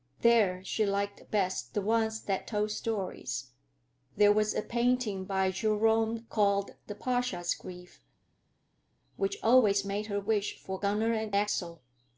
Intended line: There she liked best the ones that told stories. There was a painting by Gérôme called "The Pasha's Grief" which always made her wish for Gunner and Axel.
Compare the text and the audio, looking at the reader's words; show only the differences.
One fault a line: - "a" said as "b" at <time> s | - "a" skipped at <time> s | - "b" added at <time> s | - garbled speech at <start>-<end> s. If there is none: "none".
none